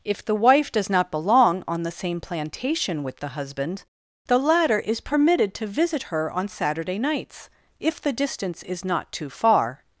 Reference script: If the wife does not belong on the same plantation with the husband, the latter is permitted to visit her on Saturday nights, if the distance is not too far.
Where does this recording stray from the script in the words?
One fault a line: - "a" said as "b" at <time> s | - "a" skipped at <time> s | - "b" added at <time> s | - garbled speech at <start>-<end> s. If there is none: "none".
none